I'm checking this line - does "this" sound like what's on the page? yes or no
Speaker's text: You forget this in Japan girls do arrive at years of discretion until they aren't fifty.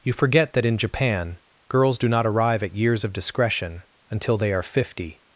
no